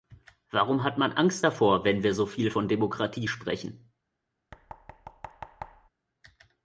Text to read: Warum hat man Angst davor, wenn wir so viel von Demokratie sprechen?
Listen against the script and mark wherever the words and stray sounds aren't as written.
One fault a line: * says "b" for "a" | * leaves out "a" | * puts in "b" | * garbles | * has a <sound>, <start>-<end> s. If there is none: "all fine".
* has a thud, 4.5-5.9 s